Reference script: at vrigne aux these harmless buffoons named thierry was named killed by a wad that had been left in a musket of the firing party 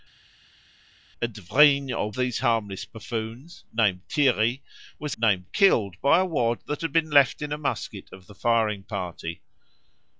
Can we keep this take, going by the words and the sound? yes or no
yes